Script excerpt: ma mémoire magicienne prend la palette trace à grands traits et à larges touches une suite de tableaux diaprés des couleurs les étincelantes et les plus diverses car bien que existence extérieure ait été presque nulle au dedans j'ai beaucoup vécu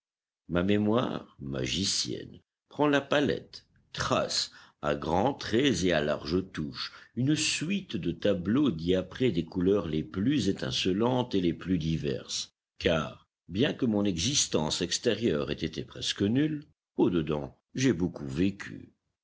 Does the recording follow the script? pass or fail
fail